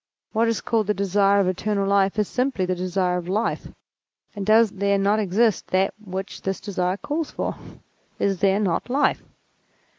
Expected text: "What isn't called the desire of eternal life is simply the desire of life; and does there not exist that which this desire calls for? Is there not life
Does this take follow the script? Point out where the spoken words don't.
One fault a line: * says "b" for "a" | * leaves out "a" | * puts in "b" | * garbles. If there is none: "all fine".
* says "is" for "isn't"